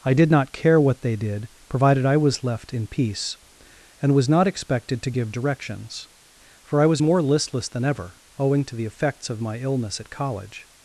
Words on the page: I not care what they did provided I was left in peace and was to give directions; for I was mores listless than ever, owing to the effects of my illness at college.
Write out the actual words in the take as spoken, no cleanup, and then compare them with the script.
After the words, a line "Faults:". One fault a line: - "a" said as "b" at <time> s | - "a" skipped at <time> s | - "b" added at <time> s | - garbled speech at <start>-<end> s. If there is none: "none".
I did not care what they did provided I was left in peace and was not expected to give directions; for I was more listless than ever, owing to the effects of my illness at college.
Faults:
- "did" added at 0.1 s
- "not expected" added at 4.3 s
- "mores" said as "more" at 7.0 s